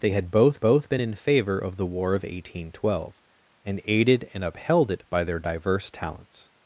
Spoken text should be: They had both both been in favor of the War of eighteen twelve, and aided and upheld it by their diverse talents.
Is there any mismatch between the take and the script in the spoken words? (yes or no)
no